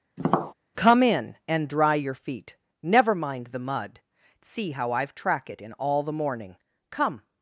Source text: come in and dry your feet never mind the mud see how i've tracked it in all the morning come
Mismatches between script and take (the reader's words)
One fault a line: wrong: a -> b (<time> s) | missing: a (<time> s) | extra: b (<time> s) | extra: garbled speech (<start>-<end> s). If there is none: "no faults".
wrong: tracked -> track (5.1 s)